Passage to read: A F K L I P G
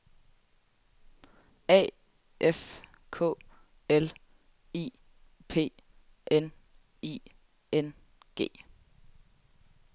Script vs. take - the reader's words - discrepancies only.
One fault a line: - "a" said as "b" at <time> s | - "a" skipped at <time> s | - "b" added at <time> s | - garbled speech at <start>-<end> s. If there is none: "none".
- "N I N" added at 6.3 s